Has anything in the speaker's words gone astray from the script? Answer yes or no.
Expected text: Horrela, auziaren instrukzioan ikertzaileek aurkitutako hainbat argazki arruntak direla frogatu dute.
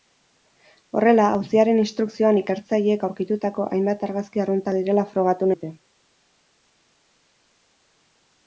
no